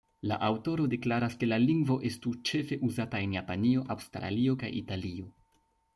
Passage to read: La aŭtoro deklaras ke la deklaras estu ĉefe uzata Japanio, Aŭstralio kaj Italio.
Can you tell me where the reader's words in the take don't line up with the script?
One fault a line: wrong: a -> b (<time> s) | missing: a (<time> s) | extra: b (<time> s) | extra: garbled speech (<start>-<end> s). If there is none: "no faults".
wrong: deklaras -> lingvo (1.6 s)
extra: en (3.3 s)